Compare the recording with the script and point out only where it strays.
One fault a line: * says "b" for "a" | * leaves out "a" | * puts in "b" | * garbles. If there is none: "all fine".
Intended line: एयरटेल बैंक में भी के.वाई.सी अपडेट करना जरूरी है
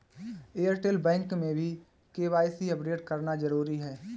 all fine